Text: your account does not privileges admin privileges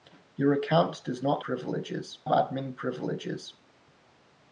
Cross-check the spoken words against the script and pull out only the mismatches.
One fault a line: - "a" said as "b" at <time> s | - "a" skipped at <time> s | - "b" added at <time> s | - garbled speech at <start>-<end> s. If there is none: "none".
none